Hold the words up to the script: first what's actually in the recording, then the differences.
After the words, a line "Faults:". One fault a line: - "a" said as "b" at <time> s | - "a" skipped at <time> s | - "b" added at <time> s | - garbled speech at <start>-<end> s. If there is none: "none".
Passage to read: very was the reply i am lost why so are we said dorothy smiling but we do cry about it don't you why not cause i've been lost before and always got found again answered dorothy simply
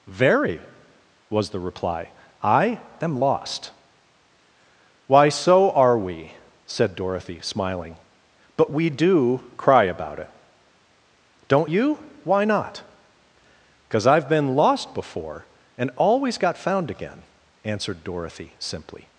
very was the reply i am lost why so are we said dorothy smiling but we do cry about it don't you why not cause i've been lost before and always got found again answered dorothy simply
Faults:
none